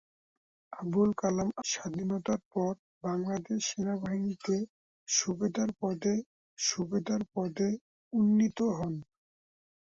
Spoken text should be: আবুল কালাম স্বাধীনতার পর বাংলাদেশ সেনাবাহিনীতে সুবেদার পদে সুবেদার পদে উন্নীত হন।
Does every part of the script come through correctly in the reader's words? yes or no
yes